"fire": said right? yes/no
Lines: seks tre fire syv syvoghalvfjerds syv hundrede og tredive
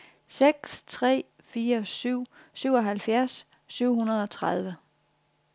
yes